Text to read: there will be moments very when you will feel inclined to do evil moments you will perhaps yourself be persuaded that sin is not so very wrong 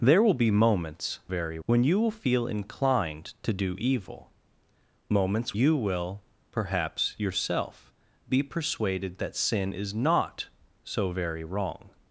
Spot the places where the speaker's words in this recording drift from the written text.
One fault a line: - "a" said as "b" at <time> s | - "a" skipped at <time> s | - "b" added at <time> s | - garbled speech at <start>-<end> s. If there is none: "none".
none